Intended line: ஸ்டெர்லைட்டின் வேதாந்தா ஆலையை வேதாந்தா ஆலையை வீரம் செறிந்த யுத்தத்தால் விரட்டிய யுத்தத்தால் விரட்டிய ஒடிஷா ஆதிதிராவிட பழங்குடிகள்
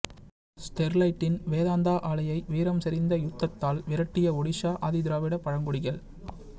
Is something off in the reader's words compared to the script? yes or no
yes